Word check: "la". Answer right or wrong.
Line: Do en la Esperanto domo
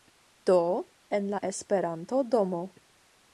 right